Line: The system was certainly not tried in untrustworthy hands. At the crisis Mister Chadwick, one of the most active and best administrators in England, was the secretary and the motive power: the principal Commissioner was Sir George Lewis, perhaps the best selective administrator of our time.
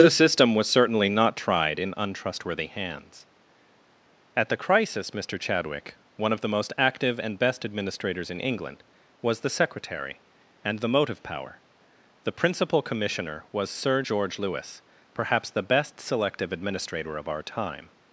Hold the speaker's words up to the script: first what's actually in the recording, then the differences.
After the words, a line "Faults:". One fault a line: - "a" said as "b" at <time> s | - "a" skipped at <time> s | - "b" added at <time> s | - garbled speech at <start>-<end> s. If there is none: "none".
The system was certainly not tried in untrustworthy hands. At the crisis Mister Chadwick, one of the most active and best administrators in England, was the secretary and the motive power: the principal Commissioner was Sir George Lewis, perhaps the best selective administrator of our time.
Faults:
none